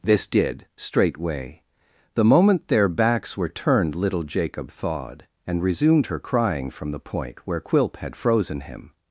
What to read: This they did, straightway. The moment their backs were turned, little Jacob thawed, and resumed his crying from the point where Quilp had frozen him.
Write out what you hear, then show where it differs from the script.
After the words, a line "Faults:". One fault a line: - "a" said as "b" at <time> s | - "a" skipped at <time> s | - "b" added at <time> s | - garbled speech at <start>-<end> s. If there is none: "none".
This did, straightway. The moment their backs were turned, little Jacob thawed, and resumed her crying from the point where Quilp had frozen him.
Faults:
- "they" skipped at 0.2 s
- "his" said as "her" at 6.1 s